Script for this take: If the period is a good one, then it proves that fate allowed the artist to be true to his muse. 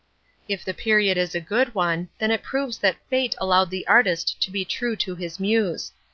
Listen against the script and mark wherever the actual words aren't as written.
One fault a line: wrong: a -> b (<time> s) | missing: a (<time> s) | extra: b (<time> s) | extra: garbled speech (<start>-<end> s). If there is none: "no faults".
no faults